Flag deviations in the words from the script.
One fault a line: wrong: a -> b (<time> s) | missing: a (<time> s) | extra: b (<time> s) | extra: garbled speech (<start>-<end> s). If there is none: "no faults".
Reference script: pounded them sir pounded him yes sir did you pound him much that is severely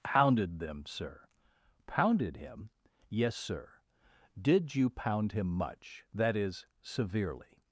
no faults